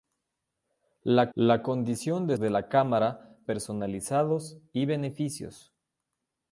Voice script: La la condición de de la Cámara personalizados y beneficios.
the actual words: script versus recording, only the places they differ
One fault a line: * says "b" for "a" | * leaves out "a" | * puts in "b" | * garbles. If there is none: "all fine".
all fine